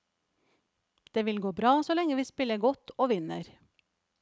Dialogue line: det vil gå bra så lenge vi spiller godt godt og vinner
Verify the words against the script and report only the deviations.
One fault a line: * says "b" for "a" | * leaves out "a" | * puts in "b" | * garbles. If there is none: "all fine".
* leaves out "godt"